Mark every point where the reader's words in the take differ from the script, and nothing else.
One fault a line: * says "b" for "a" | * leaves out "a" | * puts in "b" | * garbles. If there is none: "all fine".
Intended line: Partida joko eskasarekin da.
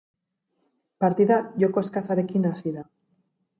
* puts in "hasi"